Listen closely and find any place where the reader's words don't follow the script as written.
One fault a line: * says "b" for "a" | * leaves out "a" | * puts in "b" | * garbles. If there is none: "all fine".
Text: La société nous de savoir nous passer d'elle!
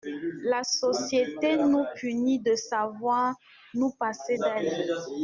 * puts in "punit"